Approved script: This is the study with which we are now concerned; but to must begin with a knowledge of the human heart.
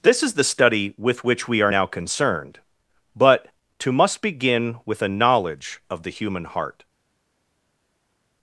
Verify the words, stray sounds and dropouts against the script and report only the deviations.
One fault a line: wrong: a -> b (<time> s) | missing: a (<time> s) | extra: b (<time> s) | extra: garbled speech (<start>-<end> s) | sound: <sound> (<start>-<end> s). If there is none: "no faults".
no faults